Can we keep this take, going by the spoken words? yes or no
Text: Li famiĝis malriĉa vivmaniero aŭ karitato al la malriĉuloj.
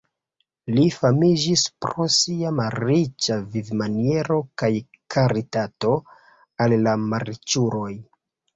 no